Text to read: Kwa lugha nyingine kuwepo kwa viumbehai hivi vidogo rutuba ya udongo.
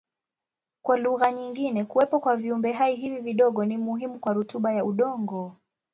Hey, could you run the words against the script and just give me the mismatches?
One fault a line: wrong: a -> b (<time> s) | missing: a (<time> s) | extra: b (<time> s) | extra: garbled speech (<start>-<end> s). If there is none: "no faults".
extra: ni muhimu kwa (3.6 s)